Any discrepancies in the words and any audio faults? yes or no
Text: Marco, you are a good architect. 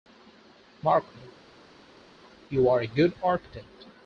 no